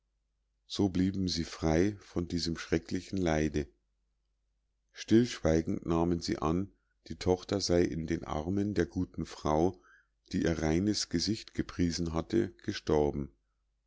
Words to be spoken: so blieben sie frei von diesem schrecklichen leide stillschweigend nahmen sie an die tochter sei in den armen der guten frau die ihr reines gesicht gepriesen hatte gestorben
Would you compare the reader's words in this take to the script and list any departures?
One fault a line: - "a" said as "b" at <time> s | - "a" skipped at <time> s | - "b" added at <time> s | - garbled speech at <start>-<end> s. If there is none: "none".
none